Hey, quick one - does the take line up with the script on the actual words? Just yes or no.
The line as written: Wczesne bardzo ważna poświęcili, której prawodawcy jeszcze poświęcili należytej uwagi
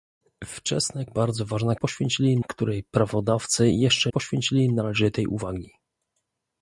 yes